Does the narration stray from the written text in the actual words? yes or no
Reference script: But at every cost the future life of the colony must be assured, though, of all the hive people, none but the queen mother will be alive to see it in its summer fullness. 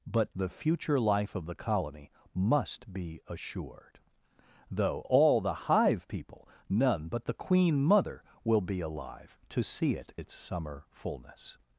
yes